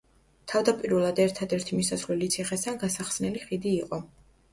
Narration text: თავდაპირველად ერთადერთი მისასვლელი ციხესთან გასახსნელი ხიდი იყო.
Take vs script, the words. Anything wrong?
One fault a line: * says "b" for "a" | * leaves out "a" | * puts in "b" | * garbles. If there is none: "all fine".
all fine